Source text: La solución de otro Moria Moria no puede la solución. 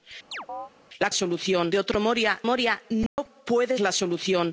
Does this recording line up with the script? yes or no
yes